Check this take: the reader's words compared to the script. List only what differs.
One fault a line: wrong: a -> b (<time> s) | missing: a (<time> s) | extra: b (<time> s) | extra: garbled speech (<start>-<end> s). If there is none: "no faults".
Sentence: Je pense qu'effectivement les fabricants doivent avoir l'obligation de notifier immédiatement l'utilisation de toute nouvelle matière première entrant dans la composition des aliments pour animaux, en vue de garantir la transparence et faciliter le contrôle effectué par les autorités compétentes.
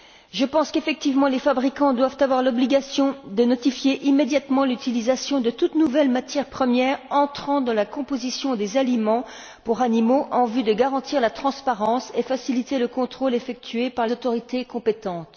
missing: les (14.0 s)